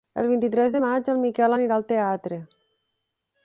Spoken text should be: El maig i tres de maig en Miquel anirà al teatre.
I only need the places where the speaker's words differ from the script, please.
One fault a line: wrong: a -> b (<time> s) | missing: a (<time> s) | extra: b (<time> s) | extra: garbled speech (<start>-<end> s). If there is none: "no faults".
wrong: maig -> vint (0.3 s)